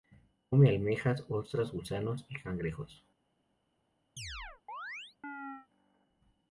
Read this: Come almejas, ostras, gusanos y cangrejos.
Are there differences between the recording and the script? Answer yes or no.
no